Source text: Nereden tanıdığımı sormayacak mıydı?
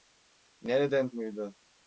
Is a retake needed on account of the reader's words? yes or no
yes